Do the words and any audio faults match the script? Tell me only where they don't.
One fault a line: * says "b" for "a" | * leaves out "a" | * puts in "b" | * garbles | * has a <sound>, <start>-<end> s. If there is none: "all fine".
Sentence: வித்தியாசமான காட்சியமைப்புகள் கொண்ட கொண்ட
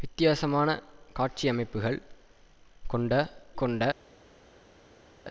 all fine